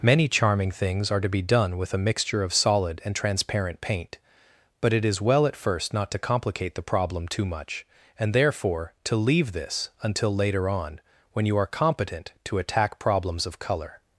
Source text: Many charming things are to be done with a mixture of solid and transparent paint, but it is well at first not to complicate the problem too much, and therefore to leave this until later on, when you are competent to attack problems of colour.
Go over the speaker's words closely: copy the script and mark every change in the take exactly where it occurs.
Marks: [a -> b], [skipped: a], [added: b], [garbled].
Many charming things are to be done with a mixture of solid and transparent paint, but it is well at first not to complicate the problem too much, and therefore to leave this until later on, when you are competent to attack problems of colour.